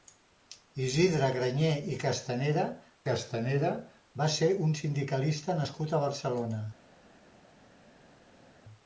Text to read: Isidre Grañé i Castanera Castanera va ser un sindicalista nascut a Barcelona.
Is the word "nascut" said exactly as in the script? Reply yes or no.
yes